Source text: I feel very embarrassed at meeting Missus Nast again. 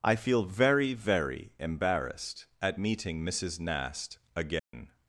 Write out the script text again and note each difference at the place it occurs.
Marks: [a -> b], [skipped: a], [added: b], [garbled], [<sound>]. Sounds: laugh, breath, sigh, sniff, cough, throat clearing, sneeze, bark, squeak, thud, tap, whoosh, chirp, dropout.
I feel very [added: very] embarrassed at meeting Missus Nast again. [dropout]